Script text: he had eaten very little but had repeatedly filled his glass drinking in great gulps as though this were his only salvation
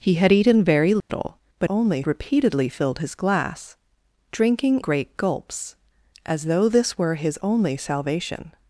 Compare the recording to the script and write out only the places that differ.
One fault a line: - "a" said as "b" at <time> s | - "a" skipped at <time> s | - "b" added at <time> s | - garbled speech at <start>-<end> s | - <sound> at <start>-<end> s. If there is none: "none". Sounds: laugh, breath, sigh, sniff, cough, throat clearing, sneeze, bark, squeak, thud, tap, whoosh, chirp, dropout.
- dropout at 1.0-1.1 s
- "had" said as "only" at 1.7 s
- "in" skipped at 4.8 s